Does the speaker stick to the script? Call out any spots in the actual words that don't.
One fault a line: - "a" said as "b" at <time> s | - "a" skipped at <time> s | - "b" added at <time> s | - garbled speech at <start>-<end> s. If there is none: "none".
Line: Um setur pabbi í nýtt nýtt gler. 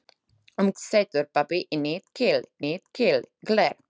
none